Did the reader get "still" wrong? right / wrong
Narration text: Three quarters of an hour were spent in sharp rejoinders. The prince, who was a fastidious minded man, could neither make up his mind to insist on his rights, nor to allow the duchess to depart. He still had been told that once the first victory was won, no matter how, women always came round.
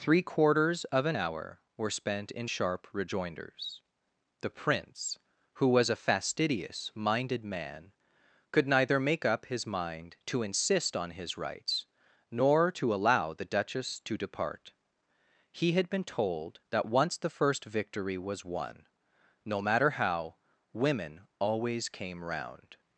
wrong